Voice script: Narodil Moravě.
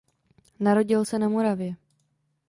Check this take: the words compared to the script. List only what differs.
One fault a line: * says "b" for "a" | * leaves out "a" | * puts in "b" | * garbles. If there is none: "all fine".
* puts in "se na"